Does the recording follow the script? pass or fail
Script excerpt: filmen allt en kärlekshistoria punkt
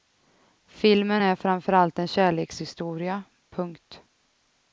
fail